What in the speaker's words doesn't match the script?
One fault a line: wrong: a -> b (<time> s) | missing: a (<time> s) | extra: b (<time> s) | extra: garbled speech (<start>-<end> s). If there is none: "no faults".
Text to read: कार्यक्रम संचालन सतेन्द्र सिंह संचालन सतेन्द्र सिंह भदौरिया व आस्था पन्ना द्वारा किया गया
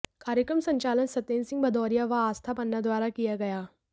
missing: संचालन सतेन्द्र सिंह (1.6 s)